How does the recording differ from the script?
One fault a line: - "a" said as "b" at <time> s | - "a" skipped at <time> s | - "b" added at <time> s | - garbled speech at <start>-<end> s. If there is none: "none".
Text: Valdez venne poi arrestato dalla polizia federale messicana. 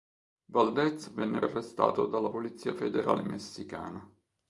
- "poi" skipped at 1.4 s